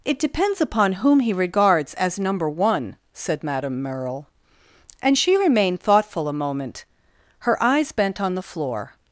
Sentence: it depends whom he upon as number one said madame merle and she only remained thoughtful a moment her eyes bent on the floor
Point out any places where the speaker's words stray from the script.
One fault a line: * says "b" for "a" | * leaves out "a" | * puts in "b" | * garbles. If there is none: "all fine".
* puts in "upon"
* says "regards" for "upon"
* leaves out "only"